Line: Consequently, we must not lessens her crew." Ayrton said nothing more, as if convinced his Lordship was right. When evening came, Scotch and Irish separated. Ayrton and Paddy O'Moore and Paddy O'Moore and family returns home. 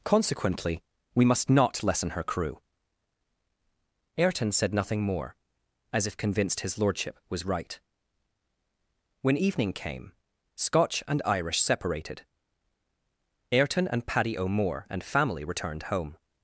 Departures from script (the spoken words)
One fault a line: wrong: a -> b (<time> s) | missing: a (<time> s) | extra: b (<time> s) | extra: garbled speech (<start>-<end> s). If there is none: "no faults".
wrong: lessens -> lessen (1.8 s)
missing: Paddy O'Moore and (15.0 s)
wrong: returns -> returned (15.4 s)